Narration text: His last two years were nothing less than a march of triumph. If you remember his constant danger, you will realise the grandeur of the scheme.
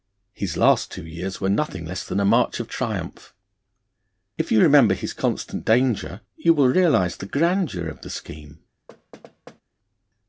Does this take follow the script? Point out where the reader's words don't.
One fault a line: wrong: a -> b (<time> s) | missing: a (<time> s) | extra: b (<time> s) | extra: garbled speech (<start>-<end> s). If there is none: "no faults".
no faults